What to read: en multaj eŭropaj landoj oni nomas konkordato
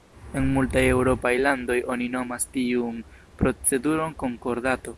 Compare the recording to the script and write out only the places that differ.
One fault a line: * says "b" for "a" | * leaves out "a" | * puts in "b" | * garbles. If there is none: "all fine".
* puts in "tiun proceduron"